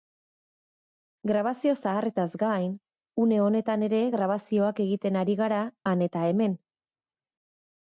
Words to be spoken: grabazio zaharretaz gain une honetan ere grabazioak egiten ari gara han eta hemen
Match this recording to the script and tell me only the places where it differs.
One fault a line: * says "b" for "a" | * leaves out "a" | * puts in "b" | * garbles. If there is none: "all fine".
all fine